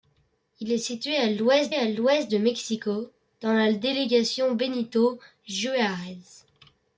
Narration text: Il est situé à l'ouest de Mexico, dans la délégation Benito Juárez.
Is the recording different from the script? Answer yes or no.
yes